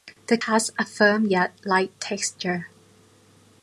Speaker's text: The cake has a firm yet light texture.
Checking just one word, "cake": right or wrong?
wrong